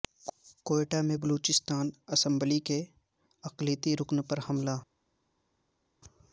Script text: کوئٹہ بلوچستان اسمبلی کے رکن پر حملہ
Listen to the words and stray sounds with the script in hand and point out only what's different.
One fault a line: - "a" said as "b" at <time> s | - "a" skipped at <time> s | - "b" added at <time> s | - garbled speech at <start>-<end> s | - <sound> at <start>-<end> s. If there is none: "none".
- "میں" added at 1.0 s
- "اقلیتی" added at 3.4 s